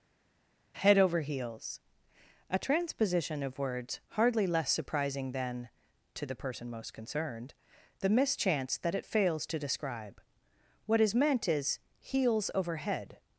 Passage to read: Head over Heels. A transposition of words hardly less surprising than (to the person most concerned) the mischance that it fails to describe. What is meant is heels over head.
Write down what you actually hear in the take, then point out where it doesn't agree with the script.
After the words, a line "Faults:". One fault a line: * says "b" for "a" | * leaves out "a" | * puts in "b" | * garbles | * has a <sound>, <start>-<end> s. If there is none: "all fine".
Head over Heels. A transposition of words hardly less surprising than (to the person most concerned) the mischance that it fails to describe. What is meant is heels over head.
Faults:
all fine